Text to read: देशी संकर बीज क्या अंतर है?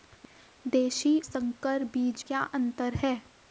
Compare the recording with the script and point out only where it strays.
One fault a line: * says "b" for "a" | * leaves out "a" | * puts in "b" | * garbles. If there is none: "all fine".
all fine